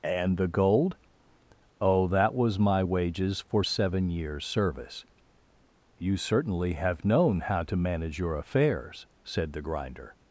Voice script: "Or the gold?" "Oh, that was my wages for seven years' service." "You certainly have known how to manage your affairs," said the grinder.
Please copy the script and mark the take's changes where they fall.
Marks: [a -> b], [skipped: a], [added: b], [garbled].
["Or -> And] the gold?" "Oh, that was my wages for seven years' service." "You certainly have known how to manage your affairs," said the grinder.